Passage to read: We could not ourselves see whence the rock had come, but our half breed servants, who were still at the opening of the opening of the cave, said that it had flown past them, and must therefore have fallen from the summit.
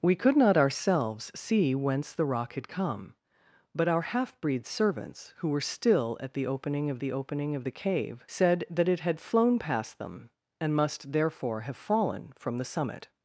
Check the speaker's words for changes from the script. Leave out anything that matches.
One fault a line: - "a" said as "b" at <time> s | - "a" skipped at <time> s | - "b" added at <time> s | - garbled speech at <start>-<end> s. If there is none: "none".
none